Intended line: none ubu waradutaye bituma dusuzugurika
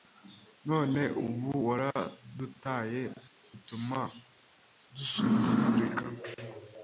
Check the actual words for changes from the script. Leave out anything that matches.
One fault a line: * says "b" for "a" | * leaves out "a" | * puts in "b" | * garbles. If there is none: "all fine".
all fine